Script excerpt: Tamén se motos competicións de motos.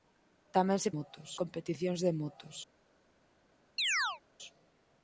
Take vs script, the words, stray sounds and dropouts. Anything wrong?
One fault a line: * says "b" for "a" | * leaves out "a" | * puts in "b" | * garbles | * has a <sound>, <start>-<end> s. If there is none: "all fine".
* has a chirp, 3.8-4.2 s